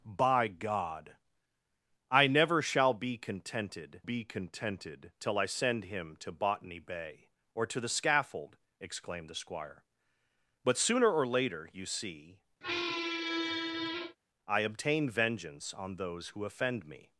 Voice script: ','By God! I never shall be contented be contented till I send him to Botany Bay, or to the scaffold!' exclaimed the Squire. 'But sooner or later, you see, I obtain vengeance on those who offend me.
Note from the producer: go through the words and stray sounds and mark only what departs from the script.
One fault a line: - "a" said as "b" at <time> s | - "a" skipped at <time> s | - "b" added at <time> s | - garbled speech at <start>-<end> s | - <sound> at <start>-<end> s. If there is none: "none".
- squeak at 12.6-14.2 s